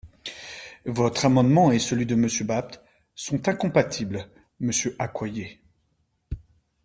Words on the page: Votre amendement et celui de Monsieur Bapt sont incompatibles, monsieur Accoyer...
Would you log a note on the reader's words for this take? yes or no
no